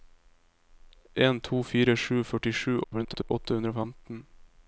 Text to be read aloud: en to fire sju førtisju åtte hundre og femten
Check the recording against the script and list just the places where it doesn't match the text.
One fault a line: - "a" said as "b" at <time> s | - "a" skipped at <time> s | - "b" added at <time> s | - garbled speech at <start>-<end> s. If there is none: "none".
- garbled speech at 2.8-3.3 s